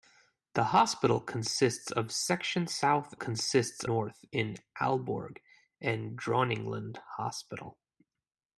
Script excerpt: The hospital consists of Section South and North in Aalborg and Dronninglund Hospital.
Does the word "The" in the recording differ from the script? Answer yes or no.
no